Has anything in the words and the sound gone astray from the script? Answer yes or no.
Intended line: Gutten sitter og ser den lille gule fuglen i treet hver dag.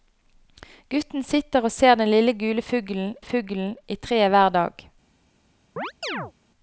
yes